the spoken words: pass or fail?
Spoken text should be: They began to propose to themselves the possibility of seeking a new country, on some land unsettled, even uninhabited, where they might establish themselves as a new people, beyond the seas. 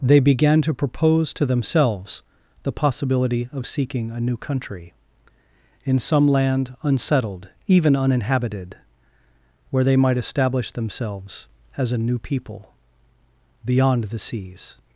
fail